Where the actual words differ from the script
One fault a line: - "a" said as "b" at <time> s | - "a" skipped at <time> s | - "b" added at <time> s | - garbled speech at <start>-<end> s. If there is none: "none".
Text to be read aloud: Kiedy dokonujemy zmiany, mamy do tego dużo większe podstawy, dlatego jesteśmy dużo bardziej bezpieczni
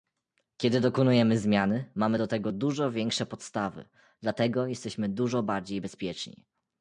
none